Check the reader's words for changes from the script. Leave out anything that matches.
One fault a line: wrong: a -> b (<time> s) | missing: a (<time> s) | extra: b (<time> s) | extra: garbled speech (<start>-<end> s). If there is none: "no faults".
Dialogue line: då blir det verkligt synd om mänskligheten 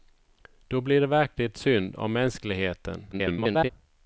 extra: garbled speech (3.1-3.7 s)